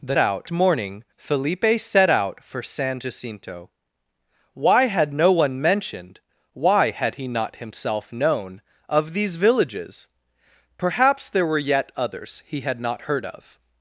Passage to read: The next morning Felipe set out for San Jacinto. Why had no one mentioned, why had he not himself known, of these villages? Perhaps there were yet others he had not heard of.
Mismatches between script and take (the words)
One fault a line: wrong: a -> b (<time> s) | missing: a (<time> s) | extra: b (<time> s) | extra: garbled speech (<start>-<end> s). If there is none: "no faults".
wrong: next -> out (0.2 s)